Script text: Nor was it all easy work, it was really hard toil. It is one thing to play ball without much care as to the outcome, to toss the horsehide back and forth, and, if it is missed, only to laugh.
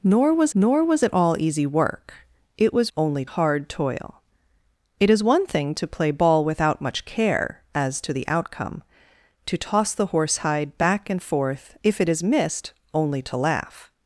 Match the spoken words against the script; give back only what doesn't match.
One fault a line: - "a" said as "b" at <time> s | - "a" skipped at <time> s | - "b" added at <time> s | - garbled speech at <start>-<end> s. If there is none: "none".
- "nor was" added at 0.5 s
- "really" said as "only" at 3.0 s
- "and" skipped at 11.8 s